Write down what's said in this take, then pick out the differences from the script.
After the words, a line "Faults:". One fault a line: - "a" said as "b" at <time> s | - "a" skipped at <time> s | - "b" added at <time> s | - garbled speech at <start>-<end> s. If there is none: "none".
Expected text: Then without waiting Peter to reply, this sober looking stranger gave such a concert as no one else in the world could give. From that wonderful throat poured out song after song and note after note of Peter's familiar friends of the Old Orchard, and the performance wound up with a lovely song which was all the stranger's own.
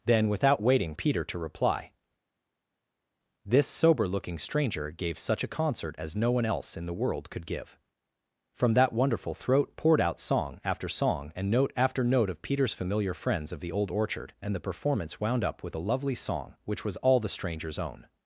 Then without waiting Peter to reply, this sober looking stranger gave such a concert as no one else in the world could give. From that wonderful throat poured out song after song and note after note of Peter's familiar friends of the Old Orchard, and the performance wound up with a lovely song which was all the stranger's own.
Faults:
none